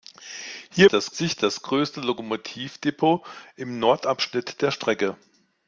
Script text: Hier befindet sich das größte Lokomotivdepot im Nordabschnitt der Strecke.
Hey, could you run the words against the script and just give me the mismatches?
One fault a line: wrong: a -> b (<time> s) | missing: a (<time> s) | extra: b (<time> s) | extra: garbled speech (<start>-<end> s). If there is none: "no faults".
wrong: befindet -> das (0.9 s)